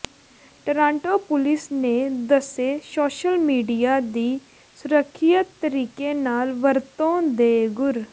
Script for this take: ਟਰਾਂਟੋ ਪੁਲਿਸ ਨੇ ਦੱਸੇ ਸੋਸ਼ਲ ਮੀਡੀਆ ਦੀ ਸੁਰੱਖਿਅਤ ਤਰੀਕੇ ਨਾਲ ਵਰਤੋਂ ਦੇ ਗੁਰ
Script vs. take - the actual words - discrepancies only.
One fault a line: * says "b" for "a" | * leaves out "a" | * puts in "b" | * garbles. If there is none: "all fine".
all fine